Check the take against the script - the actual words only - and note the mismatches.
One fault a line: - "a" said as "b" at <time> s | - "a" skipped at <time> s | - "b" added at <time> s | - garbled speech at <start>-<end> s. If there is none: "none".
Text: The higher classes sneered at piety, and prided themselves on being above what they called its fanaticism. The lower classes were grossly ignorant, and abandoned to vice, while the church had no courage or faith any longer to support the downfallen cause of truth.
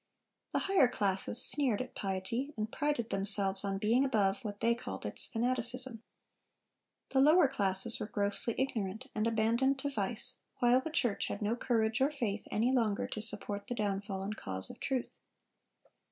none